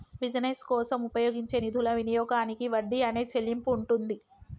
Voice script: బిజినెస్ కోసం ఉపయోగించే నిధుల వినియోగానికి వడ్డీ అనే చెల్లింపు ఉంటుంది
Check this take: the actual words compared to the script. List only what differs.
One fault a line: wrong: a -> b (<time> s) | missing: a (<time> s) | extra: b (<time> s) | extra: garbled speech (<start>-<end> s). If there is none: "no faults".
no faults